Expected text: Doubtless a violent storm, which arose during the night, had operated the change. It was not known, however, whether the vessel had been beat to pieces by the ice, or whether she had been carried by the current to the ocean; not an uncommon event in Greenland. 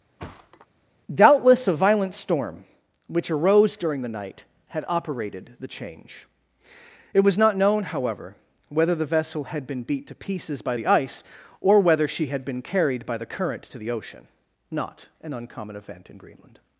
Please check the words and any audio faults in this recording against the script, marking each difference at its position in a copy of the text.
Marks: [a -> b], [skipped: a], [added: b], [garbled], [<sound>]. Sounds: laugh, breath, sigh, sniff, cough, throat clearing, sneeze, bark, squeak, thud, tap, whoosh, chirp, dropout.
[thud] Doubtless a violent storm, which arose during the night, had operated the change. It was not known, however, whether the vessel had been beat to pieces by the ice, or whether she had been carried by the current to the ocean; not an uncommon event in Greenland.